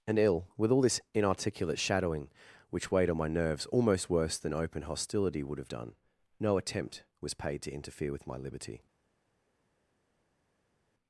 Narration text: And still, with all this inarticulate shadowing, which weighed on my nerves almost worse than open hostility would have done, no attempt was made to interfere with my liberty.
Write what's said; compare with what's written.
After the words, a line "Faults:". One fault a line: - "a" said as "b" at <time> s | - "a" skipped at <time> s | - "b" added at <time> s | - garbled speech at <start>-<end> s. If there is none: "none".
And ill, with all this inarticulate shadowing, which weighed on my nerves almost worse than open hostility would have done, no attempt was paid to interfere with my liberty.
Faults:
- "still" said as "ill" at 0.2 s
- "made" said as "paid" at 7.3 s